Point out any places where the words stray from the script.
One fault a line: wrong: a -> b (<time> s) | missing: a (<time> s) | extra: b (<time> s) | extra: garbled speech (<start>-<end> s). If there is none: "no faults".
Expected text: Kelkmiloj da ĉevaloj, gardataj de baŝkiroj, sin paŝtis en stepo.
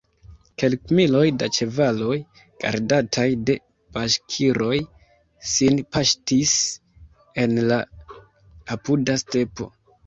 extra: la apuda (7.7 s)